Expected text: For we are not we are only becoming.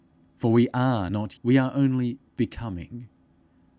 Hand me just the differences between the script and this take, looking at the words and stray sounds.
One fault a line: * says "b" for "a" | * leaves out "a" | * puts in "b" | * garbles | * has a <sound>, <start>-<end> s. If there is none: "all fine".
all fine